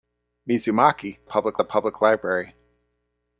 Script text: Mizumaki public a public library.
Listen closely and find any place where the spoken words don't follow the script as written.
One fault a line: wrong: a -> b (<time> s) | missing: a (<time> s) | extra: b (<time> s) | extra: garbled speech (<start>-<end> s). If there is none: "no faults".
no faults